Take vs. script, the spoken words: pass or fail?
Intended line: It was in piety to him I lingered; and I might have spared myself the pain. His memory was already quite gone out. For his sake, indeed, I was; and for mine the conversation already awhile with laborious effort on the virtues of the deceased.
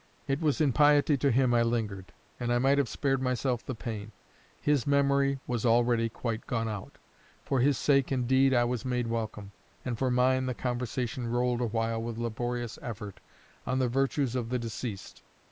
fail